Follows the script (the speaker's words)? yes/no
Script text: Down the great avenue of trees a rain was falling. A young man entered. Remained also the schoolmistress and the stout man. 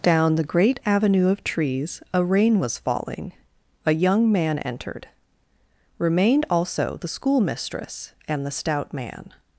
yes